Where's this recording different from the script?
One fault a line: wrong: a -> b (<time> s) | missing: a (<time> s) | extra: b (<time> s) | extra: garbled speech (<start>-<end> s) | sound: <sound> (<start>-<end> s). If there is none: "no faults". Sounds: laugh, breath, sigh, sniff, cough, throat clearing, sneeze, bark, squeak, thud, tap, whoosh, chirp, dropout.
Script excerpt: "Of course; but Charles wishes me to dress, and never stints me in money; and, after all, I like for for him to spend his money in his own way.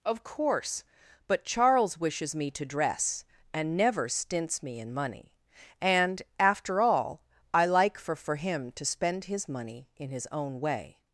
no faults